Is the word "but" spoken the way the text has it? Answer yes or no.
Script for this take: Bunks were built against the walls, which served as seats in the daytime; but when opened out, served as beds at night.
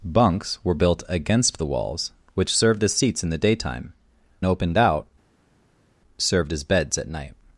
no